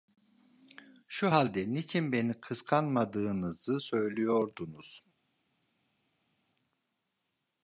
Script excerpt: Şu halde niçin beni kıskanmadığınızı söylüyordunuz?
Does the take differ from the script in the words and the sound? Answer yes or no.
no